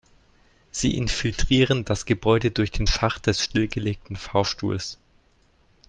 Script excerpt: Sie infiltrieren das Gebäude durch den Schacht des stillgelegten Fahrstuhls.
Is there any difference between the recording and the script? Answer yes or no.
no